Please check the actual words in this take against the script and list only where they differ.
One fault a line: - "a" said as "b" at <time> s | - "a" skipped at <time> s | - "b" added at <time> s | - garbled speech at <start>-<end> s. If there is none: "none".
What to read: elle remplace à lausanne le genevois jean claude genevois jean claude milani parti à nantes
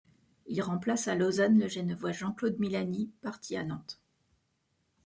- "elle" said as "il" at 0.5 s
- "genevois jean claude" skipped at 2.6 s